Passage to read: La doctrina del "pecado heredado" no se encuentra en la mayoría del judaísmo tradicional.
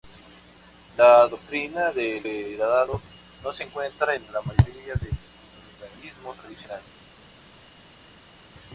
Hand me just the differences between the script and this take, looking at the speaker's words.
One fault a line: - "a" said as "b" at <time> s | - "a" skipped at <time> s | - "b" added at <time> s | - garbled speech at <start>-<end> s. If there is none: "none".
- "pecado" skipped at 2.2 s